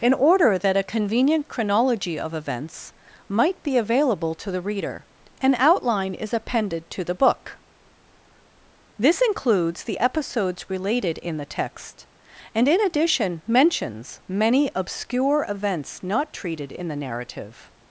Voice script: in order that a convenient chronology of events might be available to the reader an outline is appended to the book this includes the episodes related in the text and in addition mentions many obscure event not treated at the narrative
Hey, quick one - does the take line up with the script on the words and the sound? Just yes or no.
no